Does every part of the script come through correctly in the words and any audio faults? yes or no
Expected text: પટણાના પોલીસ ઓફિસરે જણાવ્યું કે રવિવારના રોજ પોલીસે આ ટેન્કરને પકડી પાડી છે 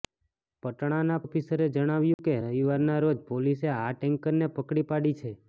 no